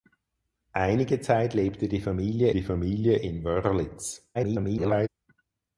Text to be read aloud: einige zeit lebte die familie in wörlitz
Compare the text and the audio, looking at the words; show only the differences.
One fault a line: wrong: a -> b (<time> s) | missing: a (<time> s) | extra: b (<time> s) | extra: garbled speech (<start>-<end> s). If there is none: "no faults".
extra: die familie (2.5 s)
extra: garbled speech (4.3-5.1 s)